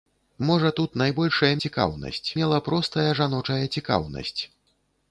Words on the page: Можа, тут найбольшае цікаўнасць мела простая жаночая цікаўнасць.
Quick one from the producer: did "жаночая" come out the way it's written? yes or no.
yes